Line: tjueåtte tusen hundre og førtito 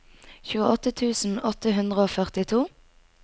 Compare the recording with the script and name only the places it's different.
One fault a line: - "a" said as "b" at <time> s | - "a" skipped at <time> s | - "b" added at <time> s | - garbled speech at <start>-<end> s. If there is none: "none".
- "åtte" added at 1.5 s